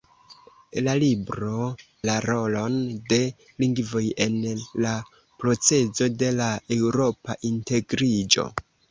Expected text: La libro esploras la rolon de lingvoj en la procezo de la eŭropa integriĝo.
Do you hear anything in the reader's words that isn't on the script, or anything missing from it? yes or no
yes